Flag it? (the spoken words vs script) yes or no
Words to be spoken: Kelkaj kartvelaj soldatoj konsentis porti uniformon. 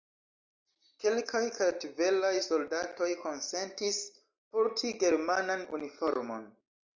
yes